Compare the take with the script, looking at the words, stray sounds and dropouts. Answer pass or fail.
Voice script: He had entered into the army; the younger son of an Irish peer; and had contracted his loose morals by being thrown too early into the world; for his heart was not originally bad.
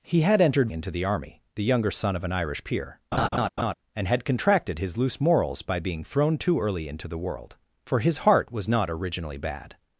fail